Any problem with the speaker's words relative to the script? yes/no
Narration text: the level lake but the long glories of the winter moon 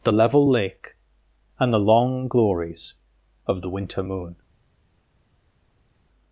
yes